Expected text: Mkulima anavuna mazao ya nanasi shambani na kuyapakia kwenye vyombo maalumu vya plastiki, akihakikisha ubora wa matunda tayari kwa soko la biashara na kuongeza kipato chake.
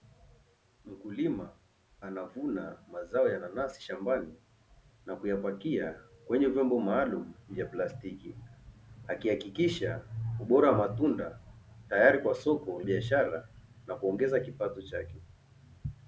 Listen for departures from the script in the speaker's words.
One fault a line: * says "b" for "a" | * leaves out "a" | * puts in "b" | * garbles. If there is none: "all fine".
* leaves out "la"